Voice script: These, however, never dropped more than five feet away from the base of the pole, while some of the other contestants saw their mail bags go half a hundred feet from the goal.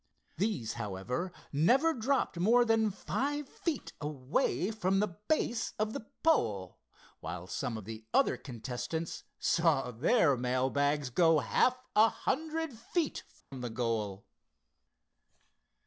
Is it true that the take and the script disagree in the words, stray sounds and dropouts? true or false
true